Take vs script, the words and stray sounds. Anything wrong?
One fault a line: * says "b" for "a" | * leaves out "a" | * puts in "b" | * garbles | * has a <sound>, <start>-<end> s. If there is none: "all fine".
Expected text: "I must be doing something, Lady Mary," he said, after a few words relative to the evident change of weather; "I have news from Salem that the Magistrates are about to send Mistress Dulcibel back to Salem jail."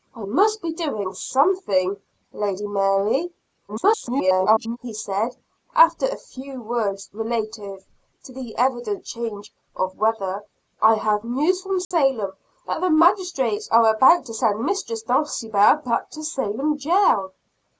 * garbles
* has a dropout, 11.8-11.9 s